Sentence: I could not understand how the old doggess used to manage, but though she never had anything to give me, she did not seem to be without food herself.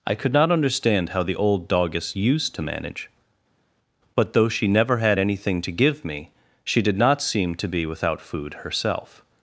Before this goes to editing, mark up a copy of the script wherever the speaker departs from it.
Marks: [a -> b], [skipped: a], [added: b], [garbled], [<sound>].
I could not understand how the old doggess used to manage, but though she never had anything to give me, she did not seem to be without food herself.